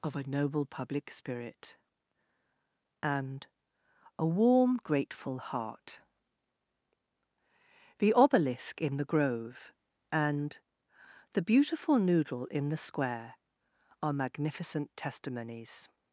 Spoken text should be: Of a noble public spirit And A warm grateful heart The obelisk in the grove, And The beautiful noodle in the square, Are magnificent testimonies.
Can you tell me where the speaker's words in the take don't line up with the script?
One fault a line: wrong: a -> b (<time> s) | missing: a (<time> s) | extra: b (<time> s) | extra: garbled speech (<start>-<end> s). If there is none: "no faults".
no faults